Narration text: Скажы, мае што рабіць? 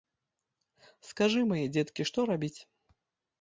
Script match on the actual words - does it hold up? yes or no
no